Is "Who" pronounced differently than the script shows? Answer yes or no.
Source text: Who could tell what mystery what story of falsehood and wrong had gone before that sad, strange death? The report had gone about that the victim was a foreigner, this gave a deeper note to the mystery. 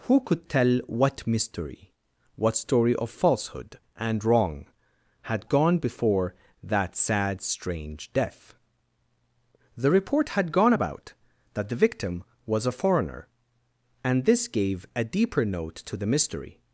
no